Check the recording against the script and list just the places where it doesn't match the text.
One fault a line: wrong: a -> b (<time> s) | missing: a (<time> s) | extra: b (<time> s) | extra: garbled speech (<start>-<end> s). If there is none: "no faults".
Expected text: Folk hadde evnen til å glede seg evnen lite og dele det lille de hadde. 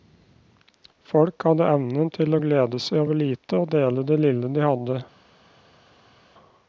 wrong: evnen -> over (3.0 s)